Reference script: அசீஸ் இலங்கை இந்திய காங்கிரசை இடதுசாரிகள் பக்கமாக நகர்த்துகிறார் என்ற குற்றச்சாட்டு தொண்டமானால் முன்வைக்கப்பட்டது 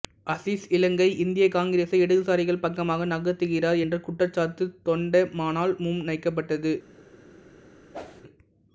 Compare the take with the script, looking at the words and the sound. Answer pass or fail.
fail